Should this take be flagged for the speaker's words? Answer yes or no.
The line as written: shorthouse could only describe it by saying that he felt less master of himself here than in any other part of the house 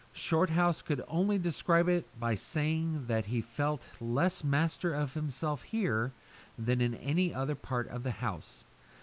no